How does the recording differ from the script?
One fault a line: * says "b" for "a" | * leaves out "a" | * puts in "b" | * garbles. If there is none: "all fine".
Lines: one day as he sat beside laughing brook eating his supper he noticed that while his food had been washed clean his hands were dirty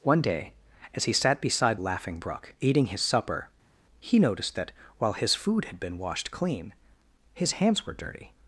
all fine